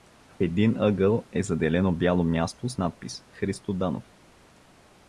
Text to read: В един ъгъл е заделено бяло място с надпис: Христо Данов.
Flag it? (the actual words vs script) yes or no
no